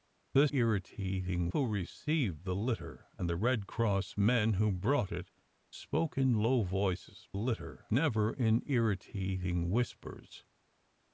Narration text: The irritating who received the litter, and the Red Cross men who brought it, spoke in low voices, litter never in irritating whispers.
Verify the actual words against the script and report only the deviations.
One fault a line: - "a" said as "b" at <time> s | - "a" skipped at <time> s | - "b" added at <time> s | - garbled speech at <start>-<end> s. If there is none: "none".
none